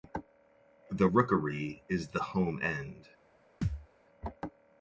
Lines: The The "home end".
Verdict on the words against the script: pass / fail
fail